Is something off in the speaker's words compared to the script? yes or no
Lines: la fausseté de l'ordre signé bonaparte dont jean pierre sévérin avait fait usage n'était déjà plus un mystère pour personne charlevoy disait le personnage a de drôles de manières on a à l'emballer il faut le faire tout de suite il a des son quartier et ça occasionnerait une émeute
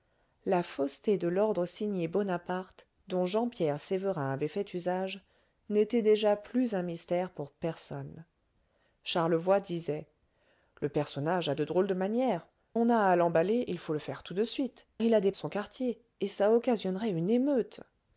no